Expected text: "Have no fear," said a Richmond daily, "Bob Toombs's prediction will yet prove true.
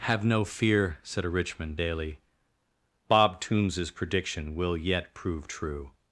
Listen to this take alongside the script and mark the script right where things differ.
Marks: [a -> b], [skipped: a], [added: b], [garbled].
"Have no fear," said a Richmond daily, "Bob Toombs's prediction will yet prove true.